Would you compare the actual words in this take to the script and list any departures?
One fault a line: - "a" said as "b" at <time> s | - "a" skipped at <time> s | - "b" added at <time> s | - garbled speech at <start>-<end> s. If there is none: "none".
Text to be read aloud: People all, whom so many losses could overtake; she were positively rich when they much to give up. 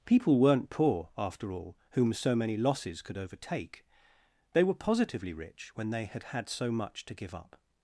- "weren't poor after" added at 0.4 s
- "she" said as "they" at 4.5 s
- "had had so" added at 6.1 s